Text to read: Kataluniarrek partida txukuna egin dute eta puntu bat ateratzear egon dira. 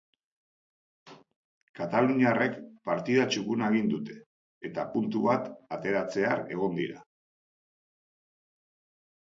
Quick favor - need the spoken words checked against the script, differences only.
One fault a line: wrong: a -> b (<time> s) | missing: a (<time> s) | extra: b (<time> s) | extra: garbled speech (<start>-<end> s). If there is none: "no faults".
no faults